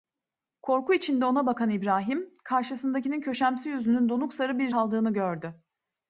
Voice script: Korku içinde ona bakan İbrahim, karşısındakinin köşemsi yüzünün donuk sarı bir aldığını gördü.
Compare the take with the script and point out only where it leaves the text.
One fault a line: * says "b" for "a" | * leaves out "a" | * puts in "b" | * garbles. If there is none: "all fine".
all fine